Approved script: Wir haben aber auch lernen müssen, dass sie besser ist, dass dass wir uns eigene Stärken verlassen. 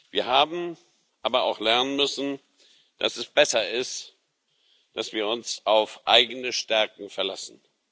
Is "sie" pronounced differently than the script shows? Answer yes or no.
yes